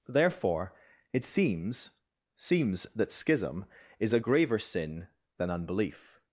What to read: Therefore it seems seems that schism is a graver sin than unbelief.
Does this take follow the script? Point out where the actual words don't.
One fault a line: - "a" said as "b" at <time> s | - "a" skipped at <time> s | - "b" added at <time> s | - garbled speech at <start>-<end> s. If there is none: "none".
none